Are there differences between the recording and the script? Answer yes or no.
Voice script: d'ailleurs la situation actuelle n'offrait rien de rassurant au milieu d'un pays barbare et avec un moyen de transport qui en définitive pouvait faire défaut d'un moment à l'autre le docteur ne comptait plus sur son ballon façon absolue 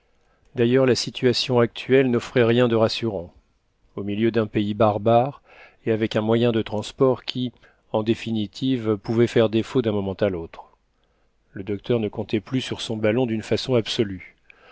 yes